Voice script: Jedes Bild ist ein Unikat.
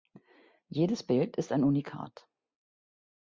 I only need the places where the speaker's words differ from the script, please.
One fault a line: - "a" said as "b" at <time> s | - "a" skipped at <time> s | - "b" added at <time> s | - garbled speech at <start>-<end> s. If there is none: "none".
none